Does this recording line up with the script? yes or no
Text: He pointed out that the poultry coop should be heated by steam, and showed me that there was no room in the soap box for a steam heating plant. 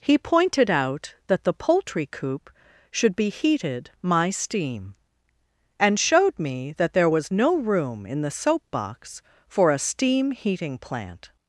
no